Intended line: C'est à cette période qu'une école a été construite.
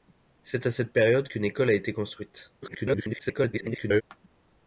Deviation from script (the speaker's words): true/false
true